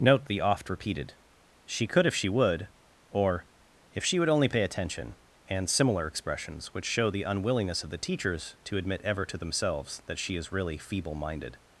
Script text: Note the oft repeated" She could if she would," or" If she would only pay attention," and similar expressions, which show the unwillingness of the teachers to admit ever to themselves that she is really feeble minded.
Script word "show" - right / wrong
right